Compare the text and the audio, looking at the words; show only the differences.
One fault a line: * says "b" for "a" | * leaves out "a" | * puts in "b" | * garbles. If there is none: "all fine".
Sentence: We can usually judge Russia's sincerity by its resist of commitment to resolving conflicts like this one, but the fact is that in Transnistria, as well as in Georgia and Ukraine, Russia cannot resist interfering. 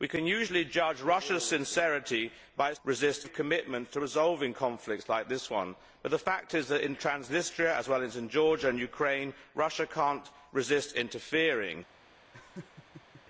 all fine